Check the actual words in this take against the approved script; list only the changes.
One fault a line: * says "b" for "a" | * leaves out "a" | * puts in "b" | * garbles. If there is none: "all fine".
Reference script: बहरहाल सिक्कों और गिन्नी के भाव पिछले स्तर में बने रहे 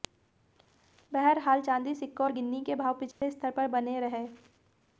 * puts in "चांदी"
* says "पर" for "में"